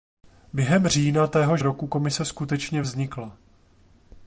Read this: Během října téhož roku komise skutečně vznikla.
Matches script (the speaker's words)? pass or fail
pass